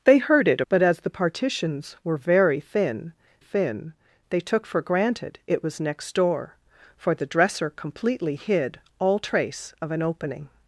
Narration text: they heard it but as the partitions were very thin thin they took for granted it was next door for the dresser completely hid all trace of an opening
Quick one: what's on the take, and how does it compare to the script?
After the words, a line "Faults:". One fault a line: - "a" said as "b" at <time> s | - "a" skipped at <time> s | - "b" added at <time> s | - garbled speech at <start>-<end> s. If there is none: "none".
they heard it but as the partitions were very thin thin they took for granted it was next door for the dresser completely hid all trace of an opening
Faults:
none